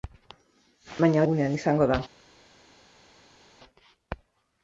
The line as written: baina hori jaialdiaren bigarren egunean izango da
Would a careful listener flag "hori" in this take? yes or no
yes